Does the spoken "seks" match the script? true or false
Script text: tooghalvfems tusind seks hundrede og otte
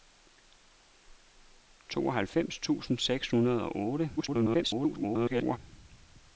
true